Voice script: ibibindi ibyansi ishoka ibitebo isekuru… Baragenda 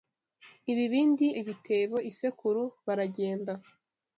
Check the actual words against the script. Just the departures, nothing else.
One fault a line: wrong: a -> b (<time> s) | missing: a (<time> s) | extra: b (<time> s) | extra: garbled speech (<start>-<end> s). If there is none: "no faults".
missing: ibyansi ishoka (1.3 s)